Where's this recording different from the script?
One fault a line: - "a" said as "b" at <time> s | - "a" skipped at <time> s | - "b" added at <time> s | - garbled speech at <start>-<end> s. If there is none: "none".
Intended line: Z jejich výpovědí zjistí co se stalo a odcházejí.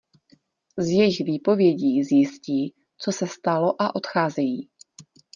none